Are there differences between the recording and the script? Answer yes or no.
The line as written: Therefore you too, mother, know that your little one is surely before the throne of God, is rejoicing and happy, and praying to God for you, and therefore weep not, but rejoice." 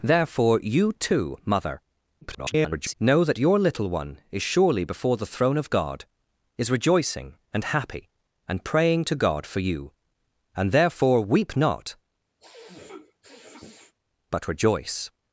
yes